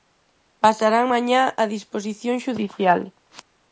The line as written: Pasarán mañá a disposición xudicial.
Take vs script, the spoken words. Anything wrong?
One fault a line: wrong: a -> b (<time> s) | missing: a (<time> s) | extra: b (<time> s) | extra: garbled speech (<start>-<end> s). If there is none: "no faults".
no faults